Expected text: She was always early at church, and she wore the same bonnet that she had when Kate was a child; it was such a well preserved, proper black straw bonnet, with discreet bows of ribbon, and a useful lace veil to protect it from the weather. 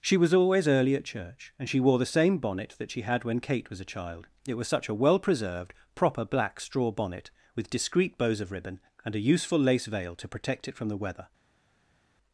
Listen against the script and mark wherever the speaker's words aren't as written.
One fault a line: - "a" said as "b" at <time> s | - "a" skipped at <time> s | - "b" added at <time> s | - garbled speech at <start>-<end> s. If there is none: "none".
none